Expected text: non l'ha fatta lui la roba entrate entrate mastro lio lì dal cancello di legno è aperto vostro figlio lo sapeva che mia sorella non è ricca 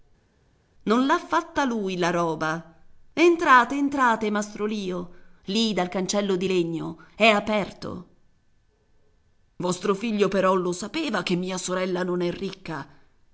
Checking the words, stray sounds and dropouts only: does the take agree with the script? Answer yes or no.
no